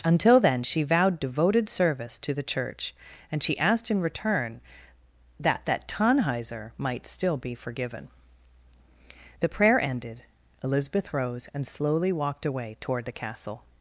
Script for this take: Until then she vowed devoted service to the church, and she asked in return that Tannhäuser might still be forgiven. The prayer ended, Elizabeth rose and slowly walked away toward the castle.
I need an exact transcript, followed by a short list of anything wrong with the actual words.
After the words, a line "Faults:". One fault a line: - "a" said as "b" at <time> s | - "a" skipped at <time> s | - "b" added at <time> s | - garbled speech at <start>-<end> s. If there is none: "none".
Until then she vowed devoted service to the church, and she asked in return that that Tannhäuser might still be forgiven. The prayer ended, Elizabeth rose and slowly walked away toward the castle.
Faults:
- "that" added at 5.7 s